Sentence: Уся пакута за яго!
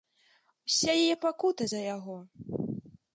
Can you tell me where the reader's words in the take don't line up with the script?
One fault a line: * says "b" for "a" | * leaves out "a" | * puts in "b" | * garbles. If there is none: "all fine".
* puts in "яе"